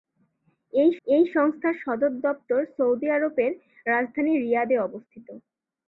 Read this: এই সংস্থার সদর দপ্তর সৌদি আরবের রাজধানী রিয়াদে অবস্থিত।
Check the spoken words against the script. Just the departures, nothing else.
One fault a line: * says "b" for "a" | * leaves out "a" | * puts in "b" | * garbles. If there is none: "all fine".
* puts in "এই"